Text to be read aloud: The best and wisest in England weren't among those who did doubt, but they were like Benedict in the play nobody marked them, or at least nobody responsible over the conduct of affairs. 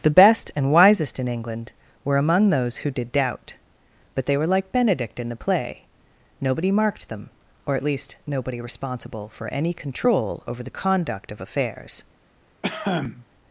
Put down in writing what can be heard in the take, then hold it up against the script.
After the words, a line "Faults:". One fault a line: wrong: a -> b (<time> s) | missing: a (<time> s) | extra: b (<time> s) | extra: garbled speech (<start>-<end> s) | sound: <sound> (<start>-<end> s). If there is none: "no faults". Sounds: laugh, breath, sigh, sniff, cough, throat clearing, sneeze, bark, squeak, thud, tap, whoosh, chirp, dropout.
The best and wisest in England were among those who did doubt, but they were like Benedict in the play nobody marked them, or at least nobody responsible for any control over the conduct of affairs.
Faults:
wrong: weren't -> were (2.0 s)
extra: for any control (9.3 s)
sound: cough (12.6-13.3 s)